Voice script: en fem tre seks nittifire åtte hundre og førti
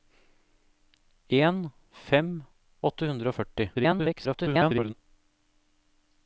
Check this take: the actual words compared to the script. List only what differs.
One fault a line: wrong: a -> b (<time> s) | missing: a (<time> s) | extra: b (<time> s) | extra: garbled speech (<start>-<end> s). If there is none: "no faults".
missing: tre seks nittifire (2.3 s)
extra: garbled speech (3.7-4.9 s)